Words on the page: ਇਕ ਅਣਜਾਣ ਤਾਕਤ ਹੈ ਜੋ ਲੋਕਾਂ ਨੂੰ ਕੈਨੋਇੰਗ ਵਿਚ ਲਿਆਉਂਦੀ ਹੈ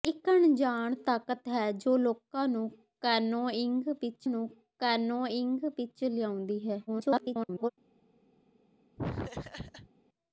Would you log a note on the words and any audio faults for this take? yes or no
yes